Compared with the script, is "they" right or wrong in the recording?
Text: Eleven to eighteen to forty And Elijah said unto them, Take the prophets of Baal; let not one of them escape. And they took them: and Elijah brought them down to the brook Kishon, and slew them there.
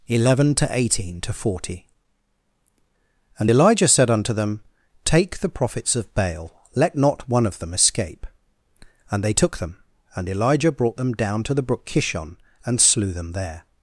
right